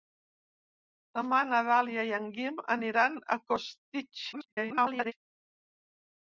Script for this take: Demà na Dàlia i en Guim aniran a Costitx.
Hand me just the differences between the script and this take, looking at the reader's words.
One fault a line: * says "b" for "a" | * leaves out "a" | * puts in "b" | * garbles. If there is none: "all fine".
* garbles